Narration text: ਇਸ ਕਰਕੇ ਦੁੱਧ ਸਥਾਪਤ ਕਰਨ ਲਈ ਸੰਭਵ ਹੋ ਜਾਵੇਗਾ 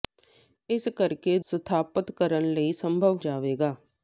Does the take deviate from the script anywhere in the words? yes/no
yes